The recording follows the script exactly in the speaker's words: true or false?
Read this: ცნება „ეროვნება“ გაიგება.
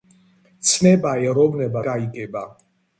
true